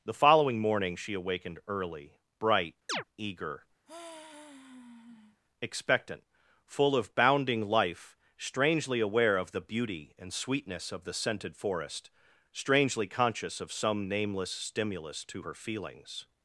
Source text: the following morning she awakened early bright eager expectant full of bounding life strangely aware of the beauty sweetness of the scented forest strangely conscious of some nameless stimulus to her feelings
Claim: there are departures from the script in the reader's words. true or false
true